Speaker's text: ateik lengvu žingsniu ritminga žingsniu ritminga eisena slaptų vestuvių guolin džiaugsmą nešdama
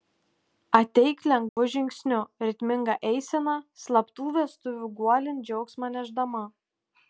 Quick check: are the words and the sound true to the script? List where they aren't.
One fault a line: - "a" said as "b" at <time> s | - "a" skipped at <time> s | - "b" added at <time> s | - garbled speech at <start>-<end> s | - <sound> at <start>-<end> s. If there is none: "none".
- dropout at 1.5-1.6 s
- "žingsniu ritminga" skipped at 3.0 s